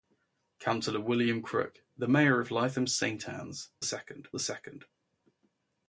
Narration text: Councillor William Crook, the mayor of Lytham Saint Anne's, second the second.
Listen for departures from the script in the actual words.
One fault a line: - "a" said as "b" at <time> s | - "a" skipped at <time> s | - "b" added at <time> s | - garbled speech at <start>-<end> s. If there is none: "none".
none